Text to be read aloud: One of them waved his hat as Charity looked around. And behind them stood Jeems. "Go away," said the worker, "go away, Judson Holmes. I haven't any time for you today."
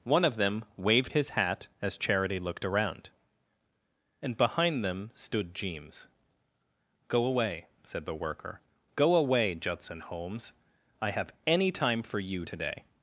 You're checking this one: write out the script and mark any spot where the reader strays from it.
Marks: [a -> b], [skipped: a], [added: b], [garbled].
One of them waved his hat as Charity looked around. And behind them stood Jeems. "Go away," said the worker, "go away, Judson Holmes. I [haven't -> have] any time for you today."